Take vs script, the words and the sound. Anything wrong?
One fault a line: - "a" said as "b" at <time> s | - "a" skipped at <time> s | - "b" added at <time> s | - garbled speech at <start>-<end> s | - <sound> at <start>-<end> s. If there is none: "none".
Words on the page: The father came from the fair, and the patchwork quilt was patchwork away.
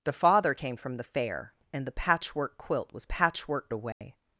- dropout at 3.9-4.0 s